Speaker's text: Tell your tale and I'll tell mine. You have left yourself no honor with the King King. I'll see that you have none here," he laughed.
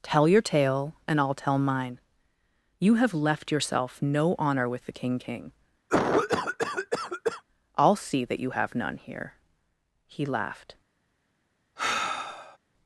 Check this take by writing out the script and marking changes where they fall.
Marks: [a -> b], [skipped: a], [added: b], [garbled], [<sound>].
Tell your tale and I'll tell mine. You have left yourself no honor with the King King. [cough] I'll see that you have none here," he laughed. [sigh]